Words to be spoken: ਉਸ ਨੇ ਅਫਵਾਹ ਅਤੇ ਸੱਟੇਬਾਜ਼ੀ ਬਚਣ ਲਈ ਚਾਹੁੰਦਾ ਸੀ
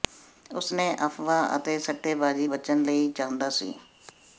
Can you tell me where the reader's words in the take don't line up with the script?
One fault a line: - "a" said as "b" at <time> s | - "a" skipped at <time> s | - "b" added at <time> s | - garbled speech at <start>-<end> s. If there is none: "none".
none